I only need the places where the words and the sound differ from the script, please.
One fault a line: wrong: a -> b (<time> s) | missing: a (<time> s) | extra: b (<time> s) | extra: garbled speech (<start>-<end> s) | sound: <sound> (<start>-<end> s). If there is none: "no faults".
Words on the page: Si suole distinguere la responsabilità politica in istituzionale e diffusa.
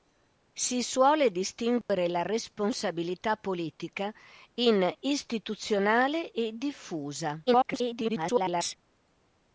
sound: dropout (1.8-1.9 s)
extra: garbled speech (7.5-8.8 s)